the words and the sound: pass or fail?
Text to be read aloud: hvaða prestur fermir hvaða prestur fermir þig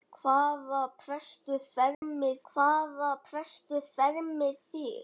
fail